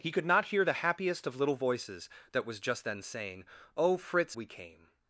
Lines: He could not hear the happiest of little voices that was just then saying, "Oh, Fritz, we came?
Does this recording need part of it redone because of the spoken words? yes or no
no